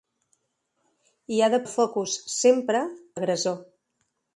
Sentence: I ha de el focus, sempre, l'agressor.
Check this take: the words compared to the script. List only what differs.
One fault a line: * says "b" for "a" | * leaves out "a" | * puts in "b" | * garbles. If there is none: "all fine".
all fine